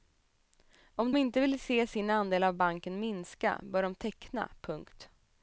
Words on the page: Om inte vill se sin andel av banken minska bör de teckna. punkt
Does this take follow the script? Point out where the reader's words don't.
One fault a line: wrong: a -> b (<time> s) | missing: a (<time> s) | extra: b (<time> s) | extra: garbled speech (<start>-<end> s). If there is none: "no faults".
no faults